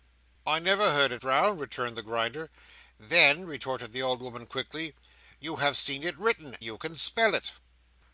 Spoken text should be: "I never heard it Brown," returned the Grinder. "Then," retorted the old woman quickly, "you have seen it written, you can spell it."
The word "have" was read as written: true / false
true